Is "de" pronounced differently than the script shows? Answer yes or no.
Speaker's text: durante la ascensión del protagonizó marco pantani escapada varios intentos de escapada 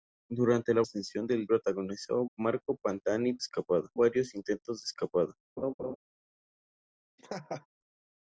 no